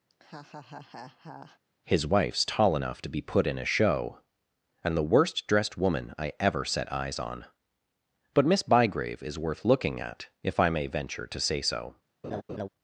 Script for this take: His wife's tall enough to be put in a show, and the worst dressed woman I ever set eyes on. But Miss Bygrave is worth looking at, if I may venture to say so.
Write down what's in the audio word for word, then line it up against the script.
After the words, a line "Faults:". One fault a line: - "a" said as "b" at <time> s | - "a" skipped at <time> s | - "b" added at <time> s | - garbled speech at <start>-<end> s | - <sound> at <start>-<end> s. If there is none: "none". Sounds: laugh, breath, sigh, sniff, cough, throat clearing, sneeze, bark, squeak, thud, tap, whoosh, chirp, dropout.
His wife's tall enough to be put in a show, and the worst dressed woman I ever set eyes on. But Miss Bygrave is worth looking at, if I may venture to say so.
Faults:
- laugh at 0.1-1.6 s
- laugh at 12.2-12.7 s